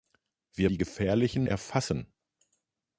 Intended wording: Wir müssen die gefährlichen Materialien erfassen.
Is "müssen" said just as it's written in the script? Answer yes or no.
no